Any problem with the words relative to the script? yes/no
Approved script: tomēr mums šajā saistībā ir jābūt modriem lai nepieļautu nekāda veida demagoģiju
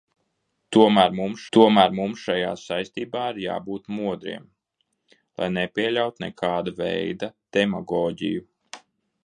yes